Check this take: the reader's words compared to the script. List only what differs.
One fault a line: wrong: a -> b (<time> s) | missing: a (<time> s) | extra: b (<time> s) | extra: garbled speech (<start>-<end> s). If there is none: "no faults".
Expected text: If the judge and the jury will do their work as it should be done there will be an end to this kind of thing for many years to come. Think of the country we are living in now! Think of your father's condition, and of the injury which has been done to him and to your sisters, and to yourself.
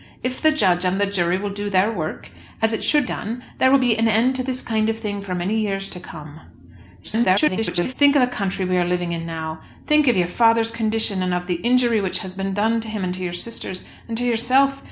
missing: be (3.0 s)
extra: garbled speech (7.0-7.9 s)